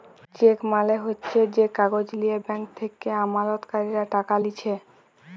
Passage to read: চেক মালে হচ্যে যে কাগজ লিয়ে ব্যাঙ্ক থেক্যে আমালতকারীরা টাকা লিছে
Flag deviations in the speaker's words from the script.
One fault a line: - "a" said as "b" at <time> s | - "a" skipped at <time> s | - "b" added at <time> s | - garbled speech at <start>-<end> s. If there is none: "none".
none